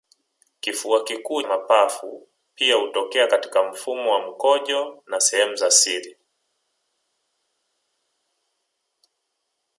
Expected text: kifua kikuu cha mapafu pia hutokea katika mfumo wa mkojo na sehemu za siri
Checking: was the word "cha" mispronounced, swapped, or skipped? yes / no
yes